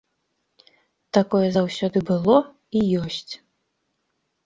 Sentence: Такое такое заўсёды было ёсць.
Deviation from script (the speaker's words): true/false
true